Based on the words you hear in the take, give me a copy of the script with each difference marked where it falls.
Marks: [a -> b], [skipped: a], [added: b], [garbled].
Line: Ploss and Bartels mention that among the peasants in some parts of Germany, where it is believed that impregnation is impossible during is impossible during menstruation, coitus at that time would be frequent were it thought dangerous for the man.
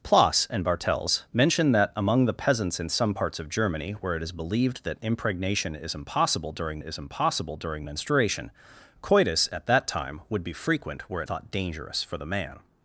Ploss and Bartels mention that among the peasants in some parts of Germany, where it is believed that impregnation is impossible during is impossible during menstruation, coitus at that time would be frequent were it thought dangerous for the man.